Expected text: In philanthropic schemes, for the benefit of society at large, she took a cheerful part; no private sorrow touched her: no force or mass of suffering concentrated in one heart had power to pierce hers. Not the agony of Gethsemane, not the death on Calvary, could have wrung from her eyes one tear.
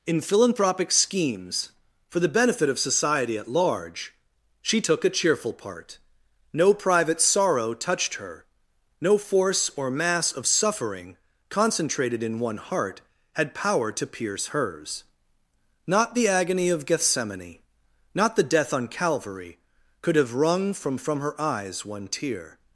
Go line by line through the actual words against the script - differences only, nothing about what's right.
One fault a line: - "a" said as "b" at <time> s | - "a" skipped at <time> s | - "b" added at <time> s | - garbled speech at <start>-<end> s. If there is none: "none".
- "from" added at 21.0 s